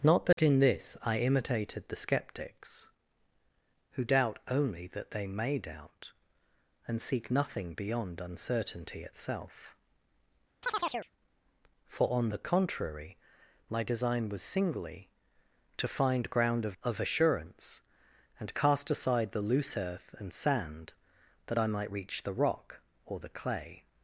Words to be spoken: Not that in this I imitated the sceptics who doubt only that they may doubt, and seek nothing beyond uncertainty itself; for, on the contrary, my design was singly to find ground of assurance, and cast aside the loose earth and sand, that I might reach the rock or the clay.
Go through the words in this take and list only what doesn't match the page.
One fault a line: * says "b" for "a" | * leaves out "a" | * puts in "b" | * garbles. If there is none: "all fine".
* puts in "of"